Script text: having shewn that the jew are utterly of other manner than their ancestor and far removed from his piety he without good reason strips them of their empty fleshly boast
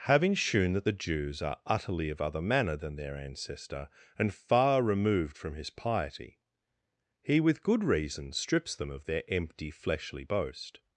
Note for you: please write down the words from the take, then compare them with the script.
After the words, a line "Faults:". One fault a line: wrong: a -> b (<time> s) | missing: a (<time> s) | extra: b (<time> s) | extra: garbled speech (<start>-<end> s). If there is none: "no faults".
having shewn that the jews are utterly of other manner than their ancestor and far removed from his piety he with good reason strips them of their empty fleshly boast
Faults:
wrong: jew -> jews (0.9 s)
wrong: without -> with (7.4 s)